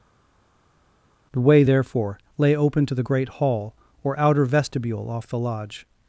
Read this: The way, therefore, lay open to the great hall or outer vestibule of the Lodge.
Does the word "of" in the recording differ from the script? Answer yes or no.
yes